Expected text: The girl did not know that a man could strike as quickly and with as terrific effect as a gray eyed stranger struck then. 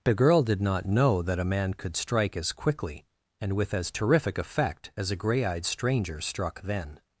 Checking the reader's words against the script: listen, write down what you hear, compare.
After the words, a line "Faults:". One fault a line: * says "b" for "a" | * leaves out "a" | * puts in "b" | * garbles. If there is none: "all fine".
The girl did not know that a man could strike as quickly and with as terrific effect as a gray eyed stranger struck then.
Faults:
all fine